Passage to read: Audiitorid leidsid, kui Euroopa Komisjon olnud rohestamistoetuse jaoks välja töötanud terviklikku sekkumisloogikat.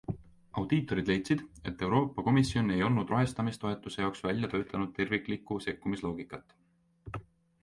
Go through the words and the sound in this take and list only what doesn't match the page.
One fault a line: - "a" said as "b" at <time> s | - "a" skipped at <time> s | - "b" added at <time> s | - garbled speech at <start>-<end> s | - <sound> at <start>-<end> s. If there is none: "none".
- "kui" said as "et" at 1.7 s
- "ei" added at 2.8 s